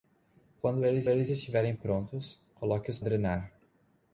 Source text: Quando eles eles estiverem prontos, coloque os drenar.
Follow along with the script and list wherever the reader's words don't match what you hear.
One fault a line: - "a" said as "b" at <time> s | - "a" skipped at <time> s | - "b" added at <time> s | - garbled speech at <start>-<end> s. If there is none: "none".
none